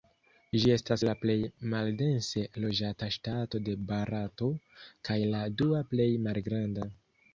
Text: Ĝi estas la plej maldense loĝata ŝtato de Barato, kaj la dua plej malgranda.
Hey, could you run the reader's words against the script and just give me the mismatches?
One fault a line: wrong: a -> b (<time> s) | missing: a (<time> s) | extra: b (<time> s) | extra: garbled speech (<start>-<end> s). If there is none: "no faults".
no faults